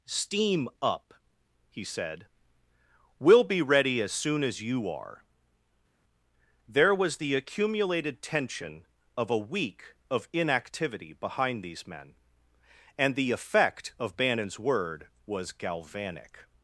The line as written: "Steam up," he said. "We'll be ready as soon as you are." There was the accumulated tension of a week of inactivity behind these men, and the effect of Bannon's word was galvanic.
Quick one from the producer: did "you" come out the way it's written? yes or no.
yes